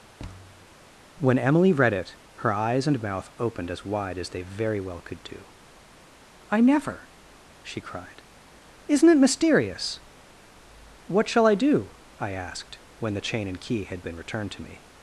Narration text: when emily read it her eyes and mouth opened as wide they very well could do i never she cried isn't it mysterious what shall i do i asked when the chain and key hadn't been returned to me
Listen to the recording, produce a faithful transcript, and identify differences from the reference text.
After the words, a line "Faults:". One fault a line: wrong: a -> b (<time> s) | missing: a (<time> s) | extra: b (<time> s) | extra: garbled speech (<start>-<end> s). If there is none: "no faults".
when emily read it her eyes and mouth opened as wide as they very well could do i never she cried isn't it mysterious what shall i do i asked when the chain and key had been returned to me
Faults:
extra: as (4.2 s)
wrong: hadn't -> had (13.8 s)